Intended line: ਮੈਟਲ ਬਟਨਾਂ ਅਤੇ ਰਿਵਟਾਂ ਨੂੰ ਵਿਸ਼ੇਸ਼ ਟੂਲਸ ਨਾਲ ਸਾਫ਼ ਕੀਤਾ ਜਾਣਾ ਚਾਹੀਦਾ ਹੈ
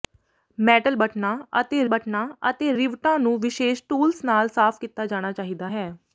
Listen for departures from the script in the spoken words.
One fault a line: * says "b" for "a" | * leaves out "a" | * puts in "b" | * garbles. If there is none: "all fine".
* puts in "ਬਟਨਾਂ ਅਤੇ"